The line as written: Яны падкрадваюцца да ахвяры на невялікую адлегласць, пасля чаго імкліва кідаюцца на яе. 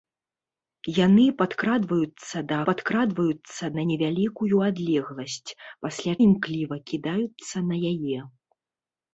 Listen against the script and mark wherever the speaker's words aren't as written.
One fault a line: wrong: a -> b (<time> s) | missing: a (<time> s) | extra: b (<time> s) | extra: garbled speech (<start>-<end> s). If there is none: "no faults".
wrong: ахвяры -> падкрадваюцца (2.7 s)
missing: чаго (6.1 s)